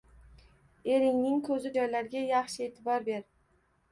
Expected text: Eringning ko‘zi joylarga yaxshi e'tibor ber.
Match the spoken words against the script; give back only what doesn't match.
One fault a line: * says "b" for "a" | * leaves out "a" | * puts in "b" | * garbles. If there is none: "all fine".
all fine